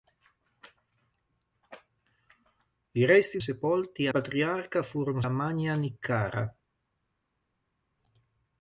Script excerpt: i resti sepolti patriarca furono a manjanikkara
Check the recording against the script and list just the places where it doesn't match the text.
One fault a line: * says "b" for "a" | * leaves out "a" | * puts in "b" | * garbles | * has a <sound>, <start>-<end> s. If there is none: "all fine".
all fine